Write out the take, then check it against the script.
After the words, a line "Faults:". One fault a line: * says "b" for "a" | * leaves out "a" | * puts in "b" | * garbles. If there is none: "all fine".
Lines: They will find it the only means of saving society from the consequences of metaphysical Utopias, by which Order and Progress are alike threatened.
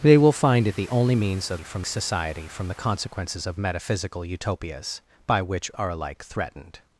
They will find it the only means of from society from the consequences of metaphysical Utopias, by which Are alike threatened.
Faults:
* says "from" for "saving"
* leaves out "Order and Progress"